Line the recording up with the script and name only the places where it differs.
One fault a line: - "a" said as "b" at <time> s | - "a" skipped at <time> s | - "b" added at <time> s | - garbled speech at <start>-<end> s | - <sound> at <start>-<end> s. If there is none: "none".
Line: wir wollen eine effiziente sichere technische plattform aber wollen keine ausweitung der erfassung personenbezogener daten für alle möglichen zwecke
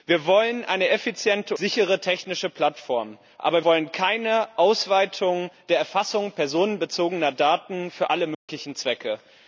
- dropout at 8.3-8.5 s